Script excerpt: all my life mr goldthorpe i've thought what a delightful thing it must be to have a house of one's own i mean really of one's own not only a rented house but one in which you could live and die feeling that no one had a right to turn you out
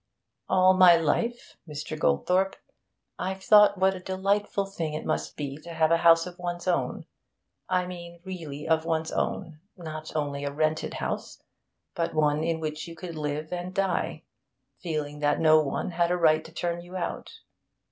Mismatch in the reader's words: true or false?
false